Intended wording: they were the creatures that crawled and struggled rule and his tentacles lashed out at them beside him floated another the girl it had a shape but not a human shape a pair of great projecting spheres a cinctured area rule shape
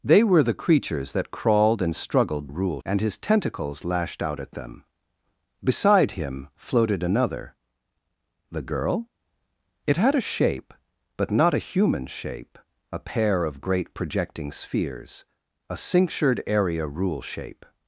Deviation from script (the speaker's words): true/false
false